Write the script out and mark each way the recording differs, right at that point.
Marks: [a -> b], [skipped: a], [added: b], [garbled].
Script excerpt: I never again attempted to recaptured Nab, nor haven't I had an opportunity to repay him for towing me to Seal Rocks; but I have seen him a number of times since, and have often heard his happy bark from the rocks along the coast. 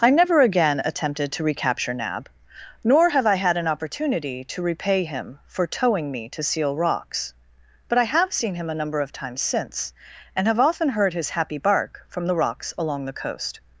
I never again attempted to [recaptured -> recapture] Nab, nor [haven't -> have] I had an opportunity to repay him for towing me to Seal Rocks; but I have seen him a number of times since, and have often heard his happy bark from the rocks along the coast.